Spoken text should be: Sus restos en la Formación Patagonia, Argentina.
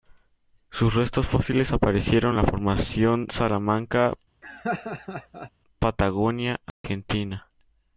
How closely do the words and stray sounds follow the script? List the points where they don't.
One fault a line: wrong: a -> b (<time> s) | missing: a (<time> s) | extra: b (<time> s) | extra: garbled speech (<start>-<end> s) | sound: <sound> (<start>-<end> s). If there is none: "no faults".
extra: fósiles aparecieron (1.3 s)
extra: Salamanca (3.3 s)
sound: laugh (4.4-5.5 s)
sound: dropout (6.7-6.8 s)